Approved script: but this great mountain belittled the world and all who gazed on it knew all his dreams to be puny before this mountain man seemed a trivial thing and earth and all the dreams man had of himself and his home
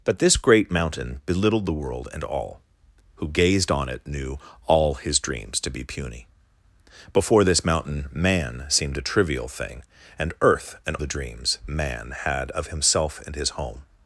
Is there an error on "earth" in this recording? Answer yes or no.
no